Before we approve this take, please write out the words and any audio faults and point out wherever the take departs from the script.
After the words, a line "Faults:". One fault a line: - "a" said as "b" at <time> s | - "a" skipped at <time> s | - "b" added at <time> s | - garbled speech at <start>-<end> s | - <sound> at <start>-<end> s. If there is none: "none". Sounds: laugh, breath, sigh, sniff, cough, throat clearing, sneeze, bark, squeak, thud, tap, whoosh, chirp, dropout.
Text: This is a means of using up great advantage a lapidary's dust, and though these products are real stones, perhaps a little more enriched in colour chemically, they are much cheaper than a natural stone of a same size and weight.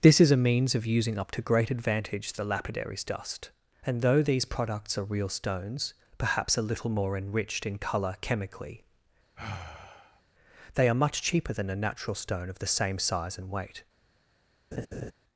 This is a means of using up to great advantage the lapidary's dust, and though these products are real stones, perhaps a little more enriched in colour chemically, they are much cheaper than a natural stone of the same size and weight.
Faults:
- "to" added at 1.3 s
- "a" said as "the" at 2.3 s
- sigh at 9.3-10.2 s
- "a" said as "the" at 12.6 s
- laugh at 14.7-15.1 s